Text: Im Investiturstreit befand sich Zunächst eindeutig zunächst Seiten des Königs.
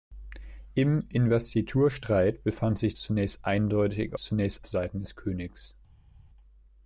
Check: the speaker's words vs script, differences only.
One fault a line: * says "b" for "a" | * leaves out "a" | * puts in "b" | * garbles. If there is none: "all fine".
all fine